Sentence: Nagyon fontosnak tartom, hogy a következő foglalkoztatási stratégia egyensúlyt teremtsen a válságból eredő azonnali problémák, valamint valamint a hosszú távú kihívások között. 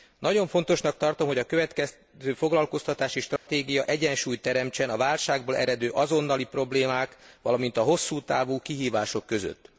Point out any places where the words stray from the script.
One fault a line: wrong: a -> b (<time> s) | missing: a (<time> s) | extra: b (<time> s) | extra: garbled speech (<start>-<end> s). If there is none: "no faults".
missing: valamint (7.8 s)